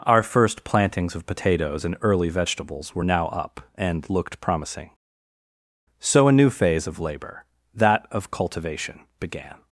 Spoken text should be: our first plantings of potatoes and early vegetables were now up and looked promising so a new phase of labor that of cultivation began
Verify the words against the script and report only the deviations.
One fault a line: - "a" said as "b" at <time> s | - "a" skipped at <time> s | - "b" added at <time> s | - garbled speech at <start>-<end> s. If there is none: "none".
none